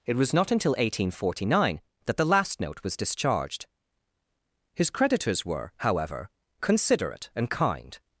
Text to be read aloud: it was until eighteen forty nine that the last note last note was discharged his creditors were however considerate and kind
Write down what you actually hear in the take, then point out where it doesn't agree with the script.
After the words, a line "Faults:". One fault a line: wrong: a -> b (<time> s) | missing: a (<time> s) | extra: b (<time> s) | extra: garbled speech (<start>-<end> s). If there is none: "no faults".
it was not until eighteen forty nine that the last note was discharged his creditors were however considerate and kind
Faults:
extra: not (0.3 s)
missing: last note (2.8 s)